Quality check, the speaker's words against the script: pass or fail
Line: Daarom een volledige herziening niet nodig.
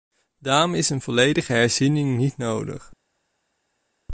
fail